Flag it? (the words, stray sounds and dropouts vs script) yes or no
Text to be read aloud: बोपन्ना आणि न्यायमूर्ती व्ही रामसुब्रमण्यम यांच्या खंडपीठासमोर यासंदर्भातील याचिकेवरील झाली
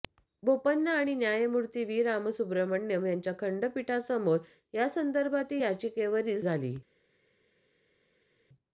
no